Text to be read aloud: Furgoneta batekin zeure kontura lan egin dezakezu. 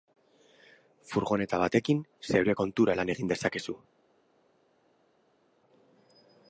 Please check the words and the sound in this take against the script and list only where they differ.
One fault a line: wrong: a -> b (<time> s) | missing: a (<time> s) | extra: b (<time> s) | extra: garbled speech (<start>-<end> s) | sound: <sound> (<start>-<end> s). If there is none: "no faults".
no faults